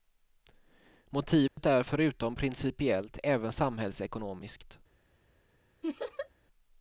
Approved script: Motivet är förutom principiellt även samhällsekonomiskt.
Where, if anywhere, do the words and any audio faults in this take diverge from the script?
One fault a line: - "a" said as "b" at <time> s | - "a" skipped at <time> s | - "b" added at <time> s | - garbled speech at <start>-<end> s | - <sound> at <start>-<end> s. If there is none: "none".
- dropout at 1.5-1.6 s
- laugh at 5.8-6.3 s